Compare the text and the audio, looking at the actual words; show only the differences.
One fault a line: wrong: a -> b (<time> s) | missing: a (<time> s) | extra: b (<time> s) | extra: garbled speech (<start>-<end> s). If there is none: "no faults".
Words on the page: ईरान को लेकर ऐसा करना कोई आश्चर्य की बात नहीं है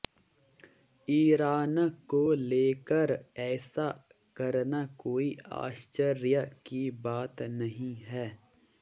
no faults